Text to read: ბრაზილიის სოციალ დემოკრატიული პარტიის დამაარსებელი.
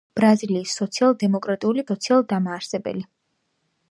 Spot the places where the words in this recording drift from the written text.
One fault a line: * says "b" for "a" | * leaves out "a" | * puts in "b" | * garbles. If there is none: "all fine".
* says "სოციალ" for "პარტიის"